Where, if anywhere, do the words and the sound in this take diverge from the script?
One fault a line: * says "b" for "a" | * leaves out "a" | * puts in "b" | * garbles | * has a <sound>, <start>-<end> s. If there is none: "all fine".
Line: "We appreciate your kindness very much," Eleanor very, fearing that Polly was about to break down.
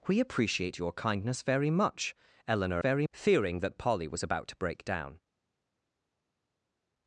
all fine